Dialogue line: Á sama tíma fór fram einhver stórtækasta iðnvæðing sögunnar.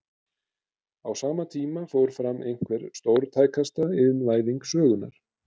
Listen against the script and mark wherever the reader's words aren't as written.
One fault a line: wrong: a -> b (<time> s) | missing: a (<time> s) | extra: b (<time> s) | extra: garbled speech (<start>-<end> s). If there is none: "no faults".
no faults